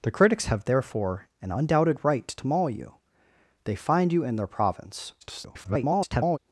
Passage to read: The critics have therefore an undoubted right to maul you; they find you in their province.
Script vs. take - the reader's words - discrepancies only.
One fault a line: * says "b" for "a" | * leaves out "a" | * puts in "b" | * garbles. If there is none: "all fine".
* garbles